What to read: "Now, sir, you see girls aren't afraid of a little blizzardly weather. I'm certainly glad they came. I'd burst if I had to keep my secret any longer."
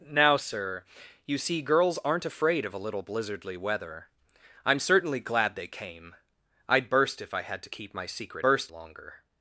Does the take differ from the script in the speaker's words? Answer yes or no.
yes